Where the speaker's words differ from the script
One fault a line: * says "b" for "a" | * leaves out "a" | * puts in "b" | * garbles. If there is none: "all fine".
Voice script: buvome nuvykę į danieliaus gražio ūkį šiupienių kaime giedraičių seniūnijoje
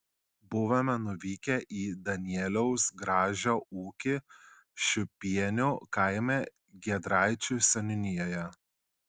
all fine